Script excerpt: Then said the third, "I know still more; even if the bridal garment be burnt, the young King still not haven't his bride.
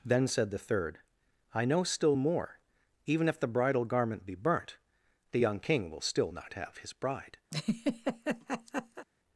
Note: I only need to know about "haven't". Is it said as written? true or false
false